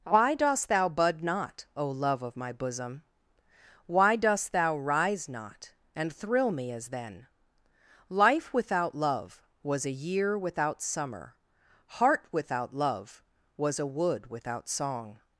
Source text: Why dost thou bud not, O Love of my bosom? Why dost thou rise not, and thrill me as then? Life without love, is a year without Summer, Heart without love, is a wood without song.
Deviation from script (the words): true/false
true